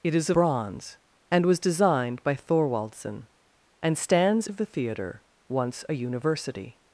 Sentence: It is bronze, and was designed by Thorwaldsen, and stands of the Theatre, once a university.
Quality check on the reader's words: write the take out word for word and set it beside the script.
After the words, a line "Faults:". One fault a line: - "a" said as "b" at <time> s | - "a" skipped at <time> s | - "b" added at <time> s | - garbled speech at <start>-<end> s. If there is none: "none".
It is bronze, and was designed by Thorwaldsen, and stands of the Theatre, once a university.
Faults:
none